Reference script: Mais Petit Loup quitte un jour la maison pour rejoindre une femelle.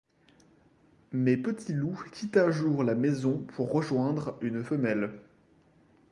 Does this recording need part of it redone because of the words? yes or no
no